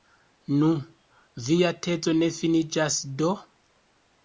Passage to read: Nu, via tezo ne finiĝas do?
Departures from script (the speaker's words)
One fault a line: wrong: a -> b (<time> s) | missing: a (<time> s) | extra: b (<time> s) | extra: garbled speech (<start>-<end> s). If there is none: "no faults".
no faults